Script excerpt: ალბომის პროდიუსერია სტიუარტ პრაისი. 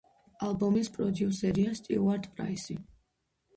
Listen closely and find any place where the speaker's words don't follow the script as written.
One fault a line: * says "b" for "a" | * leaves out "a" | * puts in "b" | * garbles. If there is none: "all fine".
all fine